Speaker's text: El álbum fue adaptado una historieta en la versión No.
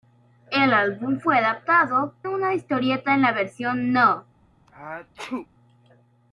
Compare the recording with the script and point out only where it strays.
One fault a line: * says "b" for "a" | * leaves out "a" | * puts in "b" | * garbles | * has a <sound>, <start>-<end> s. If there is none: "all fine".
* has a sneeze, 4.7-5.5 s